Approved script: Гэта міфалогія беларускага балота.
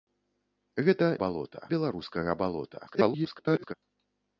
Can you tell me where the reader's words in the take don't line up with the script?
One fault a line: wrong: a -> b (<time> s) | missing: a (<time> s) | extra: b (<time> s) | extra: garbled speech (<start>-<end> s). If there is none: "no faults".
wrong: міфалогія -> балота (1.2 s)
extra: garbled speech (2.9-3.7 s)